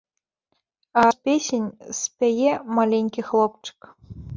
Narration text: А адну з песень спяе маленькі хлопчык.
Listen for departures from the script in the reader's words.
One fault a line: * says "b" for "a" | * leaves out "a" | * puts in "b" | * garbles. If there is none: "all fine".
* leaves out "адну"